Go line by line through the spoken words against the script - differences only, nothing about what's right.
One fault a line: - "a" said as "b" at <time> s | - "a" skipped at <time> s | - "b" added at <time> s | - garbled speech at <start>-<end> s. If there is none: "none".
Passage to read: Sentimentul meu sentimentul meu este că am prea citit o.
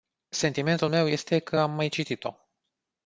- "sentimentul meu" skipped at 1.1 s
- "prea" said as "mai" at 1.7 s